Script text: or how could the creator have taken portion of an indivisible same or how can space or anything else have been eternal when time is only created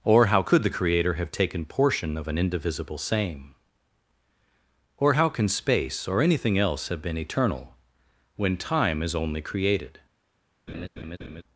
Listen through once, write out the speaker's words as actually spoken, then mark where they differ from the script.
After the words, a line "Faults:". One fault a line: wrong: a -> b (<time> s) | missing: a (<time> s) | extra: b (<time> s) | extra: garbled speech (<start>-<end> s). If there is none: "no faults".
or how could the creator have taken portion of an indivisible same or how can space or anything else have been eternal when time is only created
Faults:
no faults